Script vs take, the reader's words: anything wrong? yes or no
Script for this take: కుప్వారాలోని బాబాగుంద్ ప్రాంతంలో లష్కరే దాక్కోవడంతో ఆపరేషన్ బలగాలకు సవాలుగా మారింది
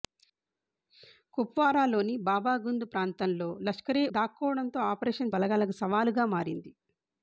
no